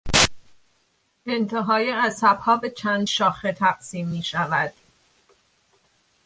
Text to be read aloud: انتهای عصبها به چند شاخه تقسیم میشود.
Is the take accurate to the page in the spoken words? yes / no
yes